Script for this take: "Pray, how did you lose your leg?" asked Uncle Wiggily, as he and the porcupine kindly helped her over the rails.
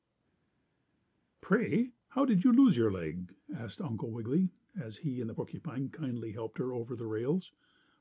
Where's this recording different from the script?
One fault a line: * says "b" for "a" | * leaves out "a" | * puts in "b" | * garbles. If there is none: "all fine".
all fine